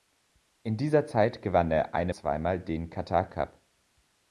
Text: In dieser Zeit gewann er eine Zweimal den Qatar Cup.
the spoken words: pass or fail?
pass